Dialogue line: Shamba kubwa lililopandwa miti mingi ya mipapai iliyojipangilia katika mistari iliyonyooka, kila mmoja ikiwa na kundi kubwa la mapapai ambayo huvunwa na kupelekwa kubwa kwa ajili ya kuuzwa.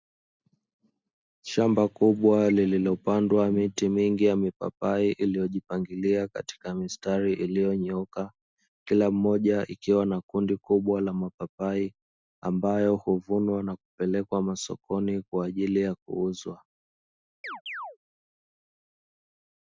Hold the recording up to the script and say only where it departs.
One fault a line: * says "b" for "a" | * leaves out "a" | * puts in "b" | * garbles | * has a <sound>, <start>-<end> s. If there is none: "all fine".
* says "masokoni" for "kubwa"
* has a chirp, 17.4-18.0 s